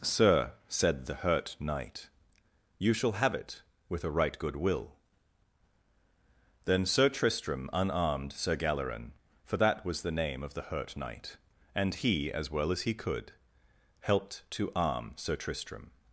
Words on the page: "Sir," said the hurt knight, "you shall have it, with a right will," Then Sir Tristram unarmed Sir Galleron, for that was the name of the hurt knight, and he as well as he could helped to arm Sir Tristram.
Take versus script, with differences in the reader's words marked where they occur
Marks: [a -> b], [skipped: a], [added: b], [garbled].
"Sir," said the hurt knight, "you shall have it, with a right [added: good] will," Then Sir Tristram unarmed Sir Galleron, for that was the name of the hurt knight, and he as well as he could helped to arm Sir Tristram.